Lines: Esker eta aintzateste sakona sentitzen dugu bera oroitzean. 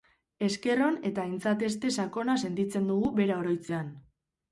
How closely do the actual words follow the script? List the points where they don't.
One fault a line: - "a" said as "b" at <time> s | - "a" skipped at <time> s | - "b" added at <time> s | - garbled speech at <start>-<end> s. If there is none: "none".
- "on" added at 0.8 s